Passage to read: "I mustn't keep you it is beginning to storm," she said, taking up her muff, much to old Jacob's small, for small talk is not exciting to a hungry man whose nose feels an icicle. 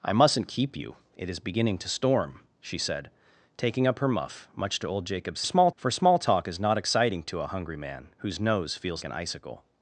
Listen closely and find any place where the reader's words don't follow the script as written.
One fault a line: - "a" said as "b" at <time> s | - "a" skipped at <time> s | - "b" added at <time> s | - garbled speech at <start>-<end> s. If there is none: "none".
none